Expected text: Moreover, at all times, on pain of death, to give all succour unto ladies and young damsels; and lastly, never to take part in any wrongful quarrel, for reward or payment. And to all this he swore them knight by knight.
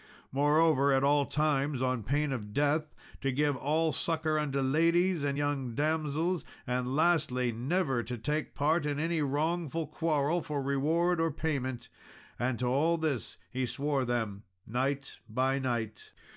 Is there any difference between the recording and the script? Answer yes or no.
no